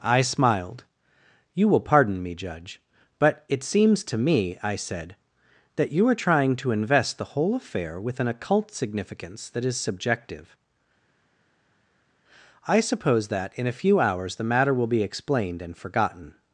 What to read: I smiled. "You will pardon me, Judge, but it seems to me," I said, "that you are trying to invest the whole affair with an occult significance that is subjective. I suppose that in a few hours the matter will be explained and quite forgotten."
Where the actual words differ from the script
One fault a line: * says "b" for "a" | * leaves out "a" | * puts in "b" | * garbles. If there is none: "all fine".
* leaves out "quite"